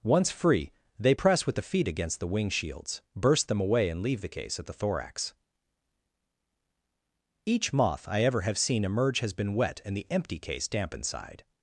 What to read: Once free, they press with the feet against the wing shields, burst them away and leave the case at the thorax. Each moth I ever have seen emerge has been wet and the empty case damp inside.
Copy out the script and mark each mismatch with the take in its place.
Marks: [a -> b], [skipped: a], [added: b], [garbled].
Once free, they press with the feet against the wing shields, burst them away and leave the case at the thorax. Each moth I ever have seen emerge has been wet and the empty case damp inside.